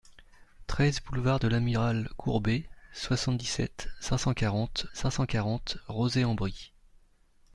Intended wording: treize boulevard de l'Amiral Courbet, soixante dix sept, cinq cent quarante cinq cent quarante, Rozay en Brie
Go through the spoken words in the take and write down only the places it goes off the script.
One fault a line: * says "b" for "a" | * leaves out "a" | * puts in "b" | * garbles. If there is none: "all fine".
all fine